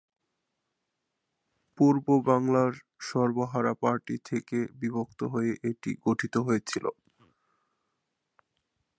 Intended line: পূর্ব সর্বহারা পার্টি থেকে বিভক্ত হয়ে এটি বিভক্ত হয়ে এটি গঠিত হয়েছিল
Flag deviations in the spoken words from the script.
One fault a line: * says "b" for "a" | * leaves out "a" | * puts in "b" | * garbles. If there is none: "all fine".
* puts in "বাংলার"
* leaves out "বিভক্ত হয়ে এটি"